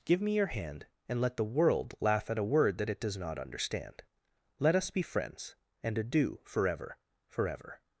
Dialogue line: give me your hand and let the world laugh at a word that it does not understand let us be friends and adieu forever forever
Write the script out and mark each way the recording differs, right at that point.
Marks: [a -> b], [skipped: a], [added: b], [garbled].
give me your hand and let the world laugh at a word that it does not understand let us be friends and adieu forever forever